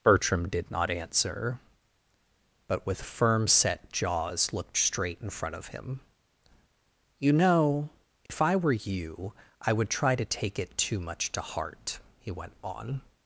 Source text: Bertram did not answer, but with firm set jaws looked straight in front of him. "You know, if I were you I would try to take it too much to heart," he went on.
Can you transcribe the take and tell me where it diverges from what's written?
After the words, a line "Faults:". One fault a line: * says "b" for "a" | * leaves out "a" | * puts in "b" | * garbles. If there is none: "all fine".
Bertram did not answer, but with firm set jaws looked straight in front of him. "You know, if I were you I would try to take it too much to heart," he went on.
Faults:
all fine